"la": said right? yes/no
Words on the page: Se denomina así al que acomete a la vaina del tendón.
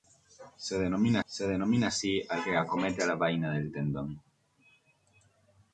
yes